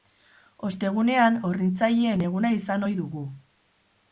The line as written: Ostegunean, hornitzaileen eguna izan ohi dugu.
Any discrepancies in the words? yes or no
no